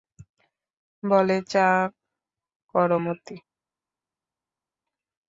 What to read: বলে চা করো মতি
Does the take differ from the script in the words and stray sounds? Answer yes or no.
no